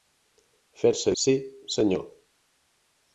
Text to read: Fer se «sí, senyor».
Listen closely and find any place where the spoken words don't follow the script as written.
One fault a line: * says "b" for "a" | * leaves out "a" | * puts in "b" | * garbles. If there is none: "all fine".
all fine